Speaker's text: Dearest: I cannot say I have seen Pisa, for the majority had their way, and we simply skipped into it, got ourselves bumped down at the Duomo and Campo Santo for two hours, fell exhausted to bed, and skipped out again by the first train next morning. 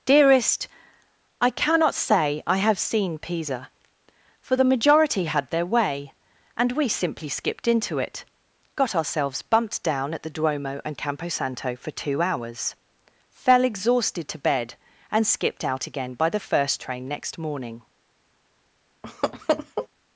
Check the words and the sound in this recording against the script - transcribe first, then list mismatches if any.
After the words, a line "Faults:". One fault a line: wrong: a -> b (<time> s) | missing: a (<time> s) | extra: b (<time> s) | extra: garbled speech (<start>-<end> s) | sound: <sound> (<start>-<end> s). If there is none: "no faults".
Dearest: I cannot say I have seen Pisa, for the majority had their way, and we simply skipped into it, got ourselves bumped down at the Duomo and Campo Santo for two hours, fell exhausted to bed, and skipped out again by the first train next morning.
Faults:
sound: laugh (19.0-19.9 s)